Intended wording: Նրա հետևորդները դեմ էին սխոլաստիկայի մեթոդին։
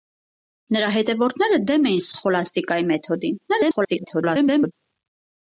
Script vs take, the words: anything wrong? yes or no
yes